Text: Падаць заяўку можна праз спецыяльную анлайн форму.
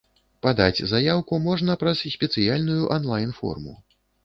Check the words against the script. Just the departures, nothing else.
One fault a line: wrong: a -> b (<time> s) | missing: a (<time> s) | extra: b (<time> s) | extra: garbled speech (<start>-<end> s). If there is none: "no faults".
no faults